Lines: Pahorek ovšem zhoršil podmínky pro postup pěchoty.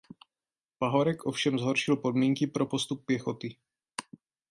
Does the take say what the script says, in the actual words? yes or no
yes